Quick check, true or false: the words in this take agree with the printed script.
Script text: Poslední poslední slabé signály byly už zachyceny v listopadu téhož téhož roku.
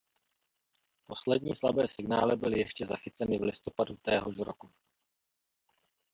false